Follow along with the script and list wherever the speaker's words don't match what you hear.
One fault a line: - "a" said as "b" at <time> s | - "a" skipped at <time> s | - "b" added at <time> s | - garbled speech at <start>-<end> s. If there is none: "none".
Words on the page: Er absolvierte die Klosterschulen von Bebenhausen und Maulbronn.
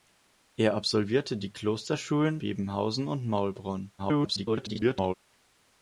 - "von" skipped at 2.4 s
- garbled speech at 4.0-5.1 s